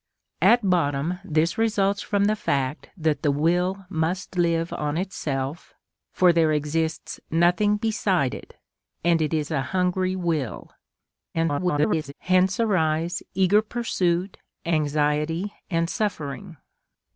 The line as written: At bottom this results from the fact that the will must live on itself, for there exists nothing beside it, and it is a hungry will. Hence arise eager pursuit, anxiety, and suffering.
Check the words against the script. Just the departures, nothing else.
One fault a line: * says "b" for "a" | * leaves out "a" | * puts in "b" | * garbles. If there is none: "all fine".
* garbles